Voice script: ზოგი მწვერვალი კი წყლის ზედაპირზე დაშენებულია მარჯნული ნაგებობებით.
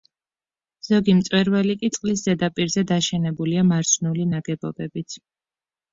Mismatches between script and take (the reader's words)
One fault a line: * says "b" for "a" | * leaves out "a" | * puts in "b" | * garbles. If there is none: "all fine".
all fine